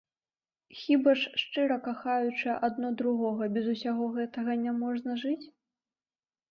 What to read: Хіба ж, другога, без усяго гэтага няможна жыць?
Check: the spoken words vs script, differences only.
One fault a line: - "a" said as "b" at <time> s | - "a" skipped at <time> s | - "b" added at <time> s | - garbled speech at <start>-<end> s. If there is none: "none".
- "шчыра кахаючы адно" added at 1.4 s